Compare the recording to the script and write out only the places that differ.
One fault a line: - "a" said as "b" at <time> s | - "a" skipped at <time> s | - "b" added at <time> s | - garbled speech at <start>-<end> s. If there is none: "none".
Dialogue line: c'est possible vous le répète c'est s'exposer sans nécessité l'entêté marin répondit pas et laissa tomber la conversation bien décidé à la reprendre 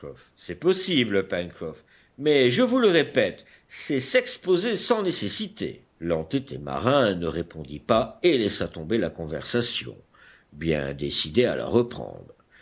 - "pencroff mais je" added at 1.3 s
- "ne" added at 7.2 s